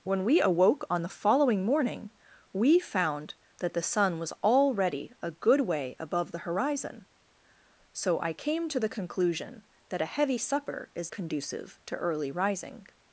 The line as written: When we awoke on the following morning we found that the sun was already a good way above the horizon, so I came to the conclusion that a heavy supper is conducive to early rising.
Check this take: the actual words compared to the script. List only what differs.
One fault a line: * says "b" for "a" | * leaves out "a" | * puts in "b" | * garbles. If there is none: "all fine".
all fine